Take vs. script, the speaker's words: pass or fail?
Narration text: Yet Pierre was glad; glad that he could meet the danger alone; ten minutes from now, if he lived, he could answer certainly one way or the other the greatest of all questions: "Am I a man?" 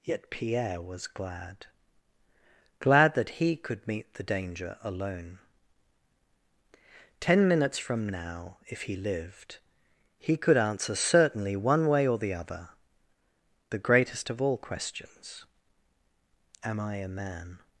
pass